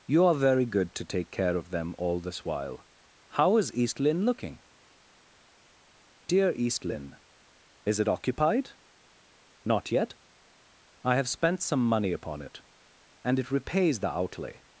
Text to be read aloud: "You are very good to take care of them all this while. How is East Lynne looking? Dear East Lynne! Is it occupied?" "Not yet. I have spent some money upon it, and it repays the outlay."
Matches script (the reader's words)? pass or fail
pass